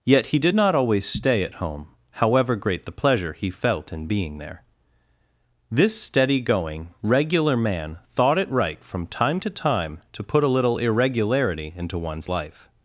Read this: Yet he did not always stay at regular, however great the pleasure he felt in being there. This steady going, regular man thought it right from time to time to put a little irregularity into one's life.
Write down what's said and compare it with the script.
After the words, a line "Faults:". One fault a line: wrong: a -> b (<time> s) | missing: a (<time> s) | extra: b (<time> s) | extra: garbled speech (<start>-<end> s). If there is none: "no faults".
Yet he did not always stay at home, however great the pleasure he felt in being there. This steady going, regular man thought it right from time to time to put a little irregularity into one's life.
Faults:
wrong: regular -> home (1.6 s)